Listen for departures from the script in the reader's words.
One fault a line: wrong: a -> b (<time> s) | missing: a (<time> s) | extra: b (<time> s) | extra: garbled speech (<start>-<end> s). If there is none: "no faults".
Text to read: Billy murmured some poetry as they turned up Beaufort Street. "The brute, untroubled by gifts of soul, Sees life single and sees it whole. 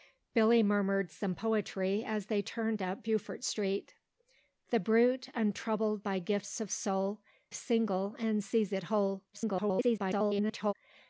missing: Sees life (7.2 s)
extra: garbled speech (9.3-10.7 s)